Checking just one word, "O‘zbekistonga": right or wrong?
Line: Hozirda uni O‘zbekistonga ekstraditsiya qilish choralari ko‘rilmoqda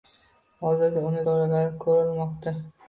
wrong